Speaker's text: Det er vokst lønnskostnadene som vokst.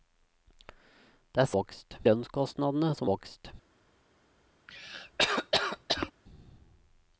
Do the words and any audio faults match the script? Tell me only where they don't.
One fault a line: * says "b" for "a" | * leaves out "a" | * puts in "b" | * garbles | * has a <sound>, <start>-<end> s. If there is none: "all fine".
* has a cough, 4.7-6.1 s